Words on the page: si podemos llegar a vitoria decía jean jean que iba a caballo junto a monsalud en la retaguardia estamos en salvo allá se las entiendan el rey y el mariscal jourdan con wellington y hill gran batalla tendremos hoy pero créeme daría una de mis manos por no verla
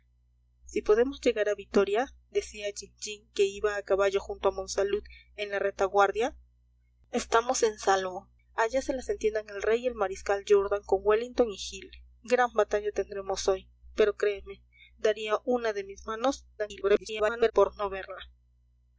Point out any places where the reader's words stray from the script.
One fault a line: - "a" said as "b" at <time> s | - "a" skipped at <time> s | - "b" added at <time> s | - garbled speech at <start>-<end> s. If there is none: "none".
- garbled speech at 16.6-17.5 s